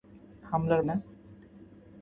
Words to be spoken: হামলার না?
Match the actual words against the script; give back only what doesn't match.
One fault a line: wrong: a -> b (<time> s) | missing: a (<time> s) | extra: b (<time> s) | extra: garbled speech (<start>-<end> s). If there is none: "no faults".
no faults